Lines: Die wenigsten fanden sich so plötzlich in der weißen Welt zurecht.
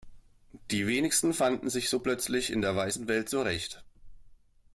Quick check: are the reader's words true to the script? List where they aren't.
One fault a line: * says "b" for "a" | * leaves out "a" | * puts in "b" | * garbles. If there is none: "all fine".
all fine